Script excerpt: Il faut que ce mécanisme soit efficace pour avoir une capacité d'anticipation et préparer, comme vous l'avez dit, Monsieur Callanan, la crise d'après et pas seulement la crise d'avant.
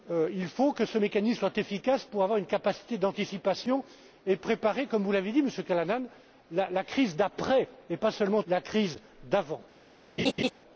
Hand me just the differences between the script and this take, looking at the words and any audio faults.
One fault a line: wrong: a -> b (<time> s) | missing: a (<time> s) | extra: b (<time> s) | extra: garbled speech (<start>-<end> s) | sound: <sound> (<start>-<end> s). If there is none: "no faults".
sound: laugh (10.2-10.5 s)